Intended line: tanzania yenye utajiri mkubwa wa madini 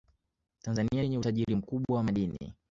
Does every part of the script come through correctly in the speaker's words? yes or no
yes